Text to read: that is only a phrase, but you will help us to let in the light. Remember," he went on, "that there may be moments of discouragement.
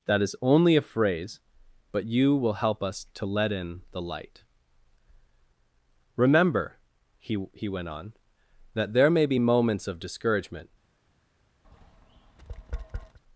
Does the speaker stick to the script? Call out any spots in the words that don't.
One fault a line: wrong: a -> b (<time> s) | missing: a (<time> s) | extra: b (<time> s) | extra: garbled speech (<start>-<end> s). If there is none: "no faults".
extra: he (7.5 s)